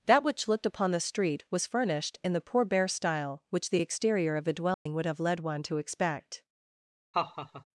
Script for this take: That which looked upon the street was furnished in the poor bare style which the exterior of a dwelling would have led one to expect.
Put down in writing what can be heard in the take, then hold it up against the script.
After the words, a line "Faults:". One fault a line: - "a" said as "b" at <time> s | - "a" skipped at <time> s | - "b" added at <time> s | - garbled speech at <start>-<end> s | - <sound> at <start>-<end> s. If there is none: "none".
That which looked upon the street was furnished in the poor bare style which the exterior of a dwelling would have led one to expect.
Faults:
- dropout at 4.7-4.9 s
- laugh at 7.1-7.6 s